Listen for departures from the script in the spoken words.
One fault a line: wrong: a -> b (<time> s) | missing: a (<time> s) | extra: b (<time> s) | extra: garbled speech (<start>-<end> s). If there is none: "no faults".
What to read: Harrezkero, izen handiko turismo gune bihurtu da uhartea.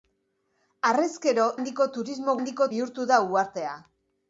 missing: izen (1.4 s)
wrong: gune -> handiko (2.4 s)